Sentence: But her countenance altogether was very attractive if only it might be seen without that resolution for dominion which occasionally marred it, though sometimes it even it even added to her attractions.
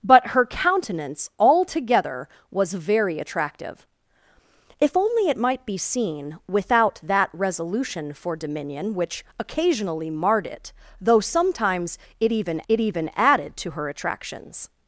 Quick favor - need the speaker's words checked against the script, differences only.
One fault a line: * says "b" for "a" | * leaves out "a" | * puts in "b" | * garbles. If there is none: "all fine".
all fine